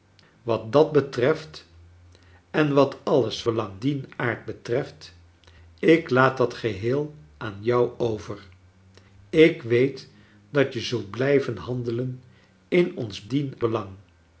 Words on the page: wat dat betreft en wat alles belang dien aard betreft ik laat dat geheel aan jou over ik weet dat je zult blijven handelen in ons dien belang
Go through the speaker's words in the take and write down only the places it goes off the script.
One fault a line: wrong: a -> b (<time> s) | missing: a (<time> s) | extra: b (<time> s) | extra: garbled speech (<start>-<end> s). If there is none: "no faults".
no faults